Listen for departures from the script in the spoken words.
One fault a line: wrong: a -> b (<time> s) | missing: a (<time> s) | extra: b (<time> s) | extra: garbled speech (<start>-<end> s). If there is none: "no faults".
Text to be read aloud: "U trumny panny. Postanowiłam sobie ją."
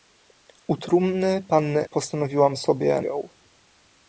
no faults